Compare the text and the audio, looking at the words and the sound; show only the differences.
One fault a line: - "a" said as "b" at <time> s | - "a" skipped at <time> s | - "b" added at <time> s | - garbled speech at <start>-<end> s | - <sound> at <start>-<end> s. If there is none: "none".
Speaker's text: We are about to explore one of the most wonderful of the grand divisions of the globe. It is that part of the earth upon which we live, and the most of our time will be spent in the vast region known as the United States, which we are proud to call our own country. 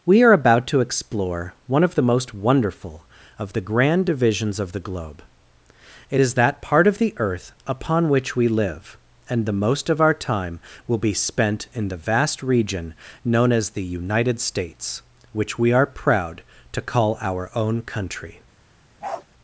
- bark at 19.0-19.3 s